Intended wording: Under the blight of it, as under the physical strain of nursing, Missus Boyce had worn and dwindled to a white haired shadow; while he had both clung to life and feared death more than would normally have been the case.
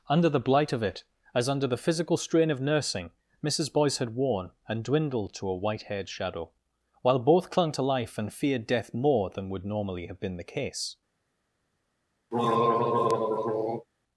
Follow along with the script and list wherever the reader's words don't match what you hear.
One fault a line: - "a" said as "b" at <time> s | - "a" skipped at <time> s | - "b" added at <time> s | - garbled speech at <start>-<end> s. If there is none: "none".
- "he had" skipped at 7.2 s